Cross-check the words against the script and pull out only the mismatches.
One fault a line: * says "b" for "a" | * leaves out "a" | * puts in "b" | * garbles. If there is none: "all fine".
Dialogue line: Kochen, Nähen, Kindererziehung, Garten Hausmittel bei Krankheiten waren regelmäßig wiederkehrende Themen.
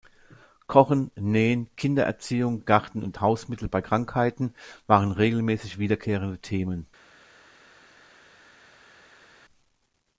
* puts in "und"